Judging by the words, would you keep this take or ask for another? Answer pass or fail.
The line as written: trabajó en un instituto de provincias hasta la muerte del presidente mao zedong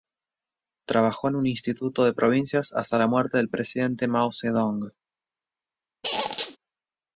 pass